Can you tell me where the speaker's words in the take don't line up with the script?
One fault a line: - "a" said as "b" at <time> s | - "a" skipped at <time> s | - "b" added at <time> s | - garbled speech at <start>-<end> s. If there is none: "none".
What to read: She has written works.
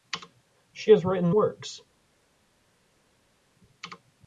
none